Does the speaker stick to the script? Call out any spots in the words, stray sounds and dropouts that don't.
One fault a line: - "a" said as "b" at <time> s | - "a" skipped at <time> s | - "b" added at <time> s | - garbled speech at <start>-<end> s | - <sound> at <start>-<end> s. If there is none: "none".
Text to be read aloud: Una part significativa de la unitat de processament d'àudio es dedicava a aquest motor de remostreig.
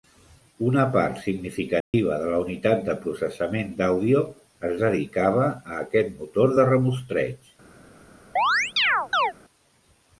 - dropout at 1.8-1.9 s
- chirp at 8.4-9.3 s